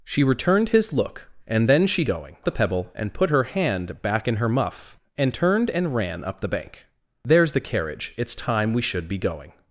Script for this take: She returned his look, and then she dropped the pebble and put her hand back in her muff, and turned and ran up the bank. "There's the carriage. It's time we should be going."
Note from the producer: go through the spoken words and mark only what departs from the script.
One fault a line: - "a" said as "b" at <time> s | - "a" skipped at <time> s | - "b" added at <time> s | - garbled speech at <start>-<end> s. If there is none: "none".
- "dropped" said as "going" at 2.0 s